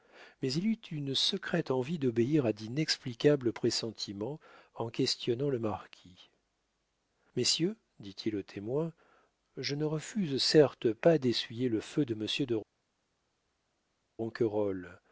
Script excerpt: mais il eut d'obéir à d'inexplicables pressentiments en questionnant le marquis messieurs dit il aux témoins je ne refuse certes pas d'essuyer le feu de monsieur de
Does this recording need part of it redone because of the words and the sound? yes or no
yes